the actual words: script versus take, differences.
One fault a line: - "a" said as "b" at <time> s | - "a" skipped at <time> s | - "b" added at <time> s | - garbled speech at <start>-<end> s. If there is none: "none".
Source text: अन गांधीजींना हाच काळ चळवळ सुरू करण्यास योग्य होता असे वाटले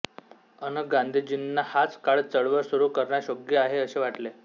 - "होता" said as "आहे" at 3.6 s